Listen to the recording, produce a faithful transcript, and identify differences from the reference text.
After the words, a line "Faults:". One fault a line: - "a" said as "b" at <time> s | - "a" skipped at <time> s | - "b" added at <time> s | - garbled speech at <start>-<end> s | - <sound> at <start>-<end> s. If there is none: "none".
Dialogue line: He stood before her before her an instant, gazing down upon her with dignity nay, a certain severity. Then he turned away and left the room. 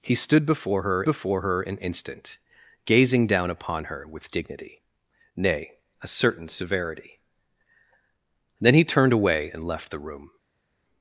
He stood before her before her an instant, gazing down upon her with dignity nay, a certain severity. Then he turned away and left the room.
Faults:
none